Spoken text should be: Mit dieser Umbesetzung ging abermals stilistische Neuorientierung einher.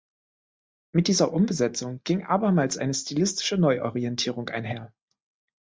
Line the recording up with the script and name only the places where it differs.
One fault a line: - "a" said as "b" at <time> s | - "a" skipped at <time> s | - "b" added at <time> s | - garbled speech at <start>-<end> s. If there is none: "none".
- "eine" added at 2.8 s